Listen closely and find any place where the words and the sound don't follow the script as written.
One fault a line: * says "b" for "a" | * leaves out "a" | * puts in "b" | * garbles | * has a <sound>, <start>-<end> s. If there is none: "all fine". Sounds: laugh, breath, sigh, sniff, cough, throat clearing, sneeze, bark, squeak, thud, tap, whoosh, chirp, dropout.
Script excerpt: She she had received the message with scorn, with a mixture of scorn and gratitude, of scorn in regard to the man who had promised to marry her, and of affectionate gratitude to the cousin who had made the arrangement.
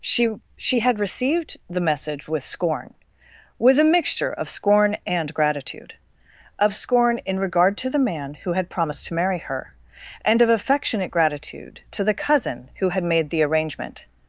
all fine